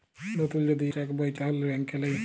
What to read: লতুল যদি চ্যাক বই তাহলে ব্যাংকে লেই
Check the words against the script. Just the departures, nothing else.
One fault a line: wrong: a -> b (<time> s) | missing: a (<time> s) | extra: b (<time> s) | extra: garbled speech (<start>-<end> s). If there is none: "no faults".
no faults